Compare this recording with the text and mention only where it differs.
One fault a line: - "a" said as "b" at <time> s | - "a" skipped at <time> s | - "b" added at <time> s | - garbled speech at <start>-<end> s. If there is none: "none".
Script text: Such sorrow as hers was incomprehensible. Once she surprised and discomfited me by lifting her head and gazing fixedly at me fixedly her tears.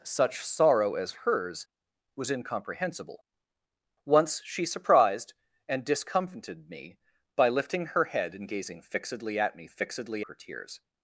none